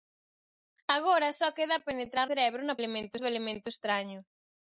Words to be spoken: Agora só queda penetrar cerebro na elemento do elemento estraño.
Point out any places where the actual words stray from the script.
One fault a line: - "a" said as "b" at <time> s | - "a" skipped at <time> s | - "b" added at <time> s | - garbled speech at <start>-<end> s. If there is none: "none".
none